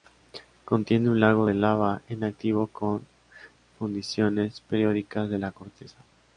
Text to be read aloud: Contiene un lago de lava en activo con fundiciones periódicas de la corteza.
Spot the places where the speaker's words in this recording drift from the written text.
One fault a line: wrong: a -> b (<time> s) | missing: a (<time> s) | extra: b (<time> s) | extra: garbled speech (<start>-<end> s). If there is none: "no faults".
no faults